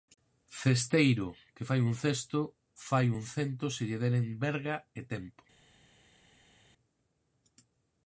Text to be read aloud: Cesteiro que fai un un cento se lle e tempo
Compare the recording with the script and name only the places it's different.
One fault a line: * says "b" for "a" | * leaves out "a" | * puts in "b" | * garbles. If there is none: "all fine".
* puts in "cesto fai"
* puts in "deren verga"